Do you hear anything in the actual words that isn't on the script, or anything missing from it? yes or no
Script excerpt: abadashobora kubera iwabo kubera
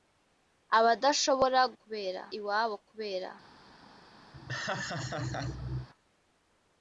no